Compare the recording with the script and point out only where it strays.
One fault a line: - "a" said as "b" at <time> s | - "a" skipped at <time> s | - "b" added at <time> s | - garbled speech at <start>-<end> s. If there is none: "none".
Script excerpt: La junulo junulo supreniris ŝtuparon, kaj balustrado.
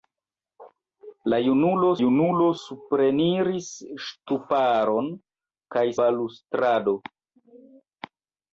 none